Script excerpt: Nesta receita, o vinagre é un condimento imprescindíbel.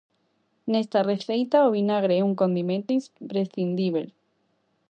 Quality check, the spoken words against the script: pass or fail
pass